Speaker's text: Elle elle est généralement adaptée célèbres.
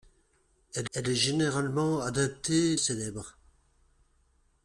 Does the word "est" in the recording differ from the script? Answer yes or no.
no